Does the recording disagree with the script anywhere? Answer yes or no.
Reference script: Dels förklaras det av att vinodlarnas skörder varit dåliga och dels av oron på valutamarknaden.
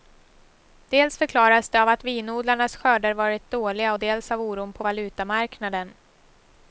no